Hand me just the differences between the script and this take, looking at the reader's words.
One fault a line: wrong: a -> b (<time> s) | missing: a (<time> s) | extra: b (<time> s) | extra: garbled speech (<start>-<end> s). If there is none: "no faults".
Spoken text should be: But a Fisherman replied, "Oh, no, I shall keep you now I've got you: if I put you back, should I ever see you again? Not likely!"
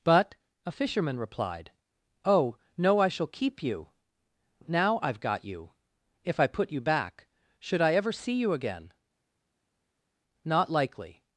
no faults